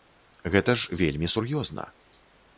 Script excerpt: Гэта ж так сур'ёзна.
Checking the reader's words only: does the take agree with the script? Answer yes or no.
no